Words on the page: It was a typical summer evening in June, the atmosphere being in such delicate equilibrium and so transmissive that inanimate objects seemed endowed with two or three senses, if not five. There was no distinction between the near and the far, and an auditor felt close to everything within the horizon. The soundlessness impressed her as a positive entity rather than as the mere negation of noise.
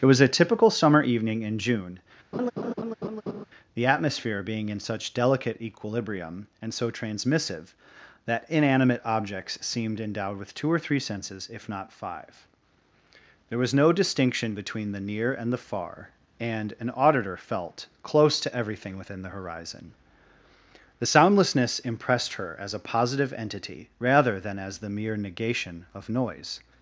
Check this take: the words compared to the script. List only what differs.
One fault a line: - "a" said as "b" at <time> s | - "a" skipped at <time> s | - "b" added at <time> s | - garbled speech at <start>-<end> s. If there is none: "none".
none